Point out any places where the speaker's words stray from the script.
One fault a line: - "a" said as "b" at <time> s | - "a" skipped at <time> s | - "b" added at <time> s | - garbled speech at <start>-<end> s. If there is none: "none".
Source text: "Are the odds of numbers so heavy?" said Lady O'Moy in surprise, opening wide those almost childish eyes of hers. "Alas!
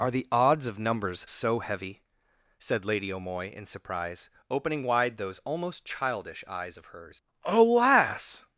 none